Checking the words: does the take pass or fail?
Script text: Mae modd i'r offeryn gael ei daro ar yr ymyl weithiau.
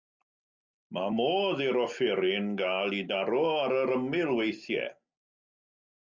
pass